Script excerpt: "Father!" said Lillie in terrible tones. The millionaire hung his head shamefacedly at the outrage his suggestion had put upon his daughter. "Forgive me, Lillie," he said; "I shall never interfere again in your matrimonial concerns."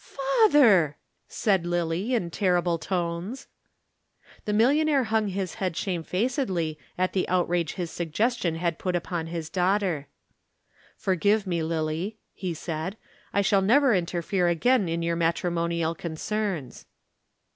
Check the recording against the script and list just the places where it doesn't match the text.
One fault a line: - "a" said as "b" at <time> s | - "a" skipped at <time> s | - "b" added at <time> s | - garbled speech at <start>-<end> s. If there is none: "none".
none